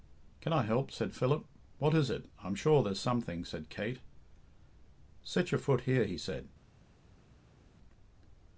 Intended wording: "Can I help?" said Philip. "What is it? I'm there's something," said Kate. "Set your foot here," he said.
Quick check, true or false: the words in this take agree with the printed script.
false